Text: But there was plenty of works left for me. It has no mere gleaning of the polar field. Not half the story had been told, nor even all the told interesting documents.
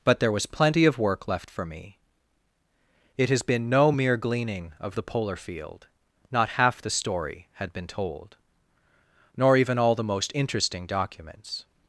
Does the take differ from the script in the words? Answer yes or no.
yes